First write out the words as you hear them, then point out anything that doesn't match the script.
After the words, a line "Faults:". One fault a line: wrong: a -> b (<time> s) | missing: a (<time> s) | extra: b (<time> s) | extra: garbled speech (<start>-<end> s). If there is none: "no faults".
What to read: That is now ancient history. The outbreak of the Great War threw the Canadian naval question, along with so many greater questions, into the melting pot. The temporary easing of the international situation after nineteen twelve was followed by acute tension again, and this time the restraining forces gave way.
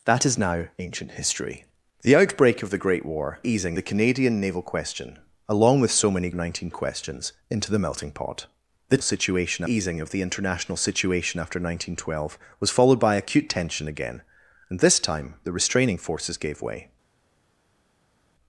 That is now ancient history. The outbreak of the Great War easing the Canadian naval question, along with so many nineteen questions, into the melting pot. The situation easing of the international situation after nineteen twelve was followed by acute tension again, and this time the restraining forces gave way.
Faults:
wrong: threw -> easing (3.4 s)
wrong: greater -> nineteen (6.3 s)
wrong: temporary -> situation (9.0 s)